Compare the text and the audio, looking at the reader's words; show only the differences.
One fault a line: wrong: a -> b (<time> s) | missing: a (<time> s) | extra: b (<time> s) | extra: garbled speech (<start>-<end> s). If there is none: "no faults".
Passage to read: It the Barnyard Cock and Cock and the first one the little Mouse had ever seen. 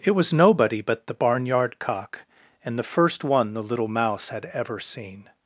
extra: was nobody but (0.1 s)
missing: Cock and (2.8 s)